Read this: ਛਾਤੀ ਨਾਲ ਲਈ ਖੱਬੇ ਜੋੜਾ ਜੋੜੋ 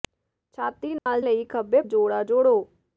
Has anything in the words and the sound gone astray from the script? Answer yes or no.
yes